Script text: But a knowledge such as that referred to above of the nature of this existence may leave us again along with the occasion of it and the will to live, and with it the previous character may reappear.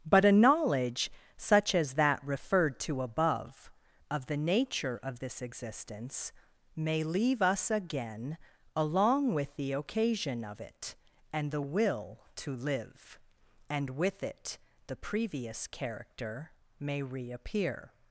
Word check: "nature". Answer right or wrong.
right